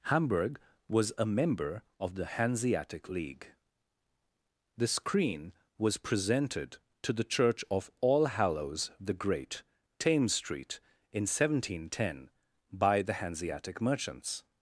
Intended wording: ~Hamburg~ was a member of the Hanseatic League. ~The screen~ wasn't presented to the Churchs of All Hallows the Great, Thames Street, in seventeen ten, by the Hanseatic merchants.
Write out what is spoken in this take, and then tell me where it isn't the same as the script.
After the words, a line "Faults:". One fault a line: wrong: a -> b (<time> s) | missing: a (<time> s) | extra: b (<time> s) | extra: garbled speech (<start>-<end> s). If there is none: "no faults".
~Hamburg~ was a member of the Hanseatic League. ~The screen~ was presented to the Church of All Hallows the Great, Thames Street, in seventeen ten, by the Hanseatic merchants.
Faults:
wrong: wasn't -> was (5.8 s)
wrong: Churchs -> Church (7.3 s)